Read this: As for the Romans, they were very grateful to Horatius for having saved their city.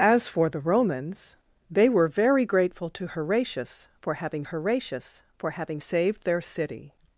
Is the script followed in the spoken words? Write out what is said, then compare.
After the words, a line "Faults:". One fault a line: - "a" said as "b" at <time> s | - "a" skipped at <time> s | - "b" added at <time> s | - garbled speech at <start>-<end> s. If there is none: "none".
As for the Romans, they were very grateful to Horatius for having Horatius for having saved their city.
Faults:
- "Horatius for having" added at 4.4 s